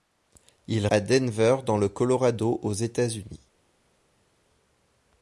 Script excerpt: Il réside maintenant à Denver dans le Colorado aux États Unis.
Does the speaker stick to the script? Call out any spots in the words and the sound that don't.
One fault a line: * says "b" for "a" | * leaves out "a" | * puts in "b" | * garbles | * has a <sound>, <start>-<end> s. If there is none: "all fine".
* leaves out "réside maintenant"